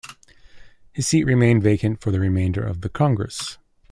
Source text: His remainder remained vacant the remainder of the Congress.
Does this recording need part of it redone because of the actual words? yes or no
yes